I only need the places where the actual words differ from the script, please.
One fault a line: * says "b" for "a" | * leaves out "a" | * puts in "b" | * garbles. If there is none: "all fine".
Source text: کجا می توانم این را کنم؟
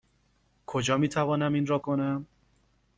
all fine